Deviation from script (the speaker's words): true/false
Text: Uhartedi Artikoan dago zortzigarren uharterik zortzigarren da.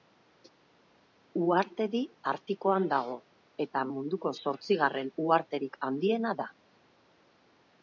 true